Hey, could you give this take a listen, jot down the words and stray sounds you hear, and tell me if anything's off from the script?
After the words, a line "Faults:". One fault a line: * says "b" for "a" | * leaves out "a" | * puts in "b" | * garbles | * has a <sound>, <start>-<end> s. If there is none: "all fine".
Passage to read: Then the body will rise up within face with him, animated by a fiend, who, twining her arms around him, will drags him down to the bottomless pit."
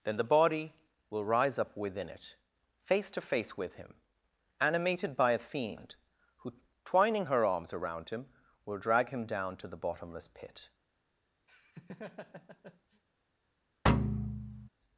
Then the body will rise up within it, face to face with him, animated by a fiend, who, twining her arms around him, will drag him down to the bottomless pit."
Faults:
* puts in "it"
* puts in "to face"
* says "drag" for "drags"
* has a laugh, 11.5-13.0 s
* has a thud, 13.9-14.7 s